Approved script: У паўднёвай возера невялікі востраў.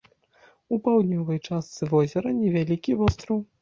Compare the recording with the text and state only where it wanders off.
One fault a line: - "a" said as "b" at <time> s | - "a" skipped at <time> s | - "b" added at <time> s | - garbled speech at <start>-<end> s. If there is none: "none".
- "частцы" added at 1.5 s